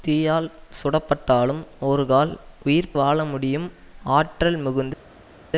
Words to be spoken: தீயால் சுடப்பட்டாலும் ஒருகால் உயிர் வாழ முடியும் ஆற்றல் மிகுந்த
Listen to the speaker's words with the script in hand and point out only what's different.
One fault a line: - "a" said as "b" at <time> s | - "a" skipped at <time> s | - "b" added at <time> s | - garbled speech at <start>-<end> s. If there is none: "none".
none